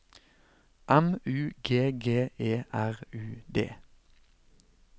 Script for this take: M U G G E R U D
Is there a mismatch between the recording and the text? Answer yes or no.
no